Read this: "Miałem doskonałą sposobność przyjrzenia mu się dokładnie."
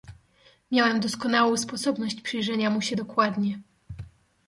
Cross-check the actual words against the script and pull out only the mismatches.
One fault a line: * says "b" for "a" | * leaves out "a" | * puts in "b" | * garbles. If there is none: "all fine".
all fine